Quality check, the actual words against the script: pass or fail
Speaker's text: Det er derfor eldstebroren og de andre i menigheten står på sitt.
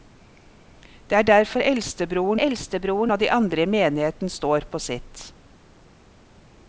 fail